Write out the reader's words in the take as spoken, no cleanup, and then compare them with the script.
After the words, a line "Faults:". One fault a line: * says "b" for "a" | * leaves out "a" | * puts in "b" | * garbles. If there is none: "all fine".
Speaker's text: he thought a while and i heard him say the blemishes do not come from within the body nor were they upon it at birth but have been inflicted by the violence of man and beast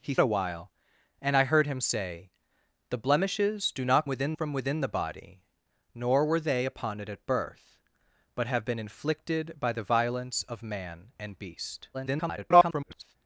he a while and i heard him say the blemishes do not within from within the body nor were they upon it at birth but have been inflicted by the violence of man and beast [garbled]
Faults:
* leaves out "thought"
* says "within" for "come"
* garbles